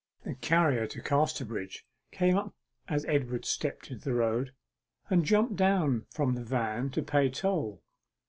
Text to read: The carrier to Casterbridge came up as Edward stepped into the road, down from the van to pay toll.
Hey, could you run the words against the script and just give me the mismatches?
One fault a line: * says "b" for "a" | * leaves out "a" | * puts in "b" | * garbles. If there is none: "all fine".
* puts in "and jumped"